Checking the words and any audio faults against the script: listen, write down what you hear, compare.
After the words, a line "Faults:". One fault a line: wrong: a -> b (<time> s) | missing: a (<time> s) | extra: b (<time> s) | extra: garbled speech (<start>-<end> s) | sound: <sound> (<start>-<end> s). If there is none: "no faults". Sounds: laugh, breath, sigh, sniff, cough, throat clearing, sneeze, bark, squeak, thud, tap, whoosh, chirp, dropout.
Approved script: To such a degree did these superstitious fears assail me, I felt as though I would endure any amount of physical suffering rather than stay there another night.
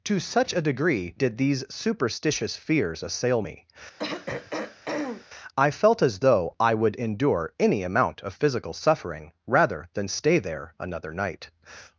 To such a degree did these superstitious fears assail me, I felt as though I would endure any amount of physical suffering rather than stay there another night.
Faults:
sound: throat clearing (4.0-5.3 s)